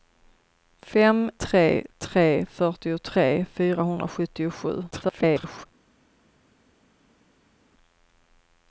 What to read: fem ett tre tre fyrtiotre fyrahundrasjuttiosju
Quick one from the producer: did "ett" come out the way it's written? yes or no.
no